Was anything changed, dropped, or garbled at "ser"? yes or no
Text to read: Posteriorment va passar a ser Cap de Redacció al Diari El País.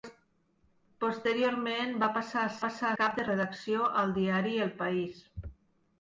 yes